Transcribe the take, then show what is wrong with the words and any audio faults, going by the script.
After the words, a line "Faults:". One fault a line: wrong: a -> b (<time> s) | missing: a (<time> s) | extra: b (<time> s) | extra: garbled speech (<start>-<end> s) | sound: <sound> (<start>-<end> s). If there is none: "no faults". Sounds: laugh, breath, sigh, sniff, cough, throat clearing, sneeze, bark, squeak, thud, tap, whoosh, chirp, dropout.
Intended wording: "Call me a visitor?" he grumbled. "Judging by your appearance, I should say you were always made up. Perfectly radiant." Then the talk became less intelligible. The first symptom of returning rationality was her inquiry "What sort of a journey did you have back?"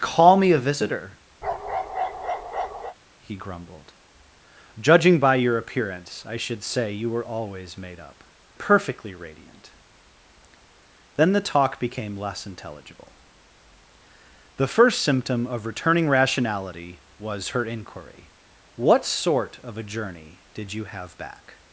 "Call me a visitor?" he grumbled. "Judging by your appearance, I should say you were always made up. Perfectly radiant." Then the talk became less intelligible. The first symptom of returning rationality was her inquiry "What sort of a journey did you have back?"
Faults:
sound: bark (1.4-3.0 s)